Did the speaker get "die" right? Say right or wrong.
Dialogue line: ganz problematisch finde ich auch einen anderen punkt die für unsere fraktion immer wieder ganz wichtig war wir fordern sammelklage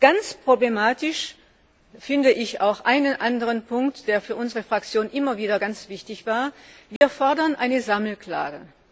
wrong